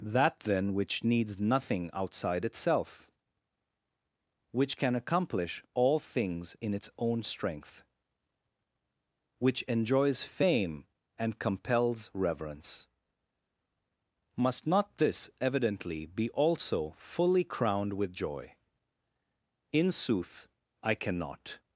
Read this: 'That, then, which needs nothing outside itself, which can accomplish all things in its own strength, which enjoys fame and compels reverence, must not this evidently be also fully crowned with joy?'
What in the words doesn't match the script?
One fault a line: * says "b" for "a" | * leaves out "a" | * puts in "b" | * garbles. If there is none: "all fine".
* puts in "In sooth I cannot"